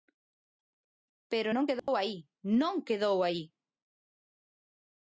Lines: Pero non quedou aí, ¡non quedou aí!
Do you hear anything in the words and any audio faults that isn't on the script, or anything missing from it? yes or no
yes